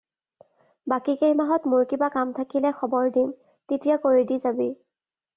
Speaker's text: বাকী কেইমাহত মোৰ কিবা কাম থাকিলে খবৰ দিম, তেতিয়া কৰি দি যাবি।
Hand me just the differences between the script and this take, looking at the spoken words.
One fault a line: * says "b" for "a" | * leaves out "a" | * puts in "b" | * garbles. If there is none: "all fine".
all fine